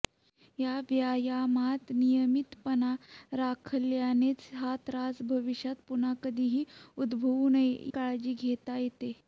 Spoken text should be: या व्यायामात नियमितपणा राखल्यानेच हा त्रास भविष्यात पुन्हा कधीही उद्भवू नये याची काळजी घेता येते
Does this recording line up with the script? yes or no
no